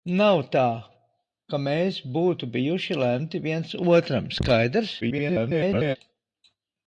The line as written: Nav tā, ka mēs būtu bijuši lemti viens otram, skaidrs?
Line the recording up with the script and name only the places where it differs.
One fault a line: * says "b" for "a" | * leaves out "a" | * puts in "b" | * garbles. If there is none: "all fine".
* garbles